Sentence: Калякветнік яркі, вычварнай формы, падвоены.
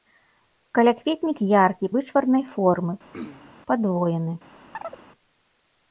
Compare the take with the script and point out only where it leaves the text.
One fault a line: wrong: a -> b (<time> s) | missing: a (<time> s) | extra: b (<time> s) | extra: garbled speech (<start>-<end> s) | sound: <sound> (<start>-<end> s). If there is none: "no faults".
sound: throat clearing (3.1-3.6 s)
sound: chirp (4.7-5.0 s)